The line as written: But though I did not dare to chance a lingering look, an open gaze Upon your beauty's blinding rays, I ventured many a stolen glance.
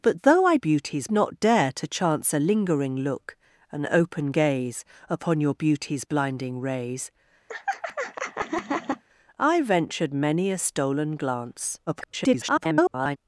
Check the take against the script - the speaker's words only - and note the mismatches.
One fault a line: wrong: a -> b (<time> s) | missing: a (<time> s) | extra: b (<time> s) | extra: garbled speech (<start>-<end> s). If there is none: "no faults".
wrong: did -> beauty's (0.6 s)
extra: garbled speech (11.9-13.2 s)